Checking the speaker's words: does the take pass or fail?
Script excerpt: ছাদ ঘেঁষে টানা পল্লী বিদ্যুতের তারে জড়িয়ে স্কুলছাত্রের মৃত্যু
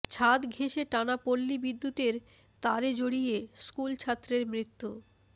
pass